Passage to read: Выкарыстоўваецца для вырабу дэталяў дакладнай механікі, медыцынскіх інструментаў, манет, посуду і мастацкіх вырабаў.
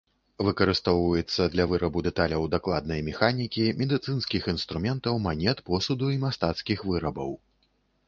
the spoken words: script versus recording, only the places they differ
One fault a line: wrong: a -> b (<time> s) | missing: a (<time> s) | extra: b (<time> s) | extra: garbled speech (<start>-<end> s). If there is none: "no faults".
no faults